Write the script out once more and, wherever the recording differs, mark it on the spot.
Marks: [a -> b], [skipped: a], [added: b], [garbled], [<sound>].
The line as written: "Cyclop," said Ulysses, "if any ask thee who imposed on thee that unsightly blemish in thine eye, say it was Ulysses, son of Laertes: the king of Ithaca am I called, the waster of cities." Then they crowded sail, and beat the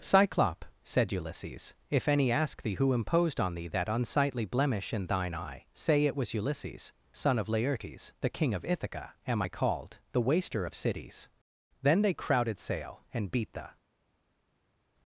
"Cyclop," said Ulysses, "if any ask thee who imposed on thee that unsightly blemish in thine eye, say it was Ulysses, son of Laertes: the king of Ithaca am I called, the waster of cities." Then they crowded sail, and beat the